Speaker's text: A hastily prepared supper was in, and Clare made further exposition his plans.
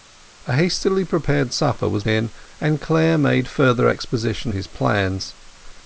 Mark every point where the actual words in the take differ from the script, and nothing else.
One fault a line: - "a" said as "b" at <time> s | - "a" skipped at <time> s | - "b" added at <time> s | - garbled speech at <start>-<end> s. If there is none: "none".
none